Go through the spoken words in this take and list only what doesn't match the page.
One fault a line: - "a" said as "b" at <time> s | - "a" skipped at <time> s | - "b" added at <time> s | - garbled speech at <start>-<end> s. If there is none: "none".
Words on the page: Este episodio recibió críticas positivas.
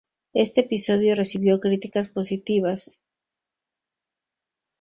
none